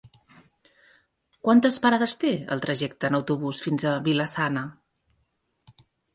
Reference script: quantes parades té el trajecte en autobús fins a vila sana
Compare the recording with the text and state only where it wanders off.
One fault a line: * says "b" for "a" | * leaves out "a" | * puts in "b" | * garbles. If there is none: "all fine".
all fine